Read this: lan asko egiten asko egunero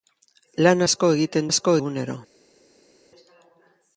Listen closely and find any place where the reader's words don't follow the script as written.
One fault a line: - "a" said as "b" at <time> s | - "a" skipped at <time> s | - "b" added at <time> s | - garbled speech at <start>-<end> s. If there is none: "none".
none